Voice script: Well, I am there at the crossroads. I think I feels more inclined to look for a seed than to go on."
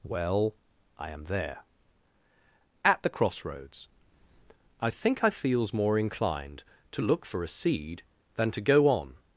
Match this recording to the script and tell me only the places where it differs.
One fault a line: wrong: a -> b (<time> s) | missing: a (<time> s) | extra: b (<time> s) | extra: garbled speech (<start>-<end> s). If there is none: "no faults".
no faults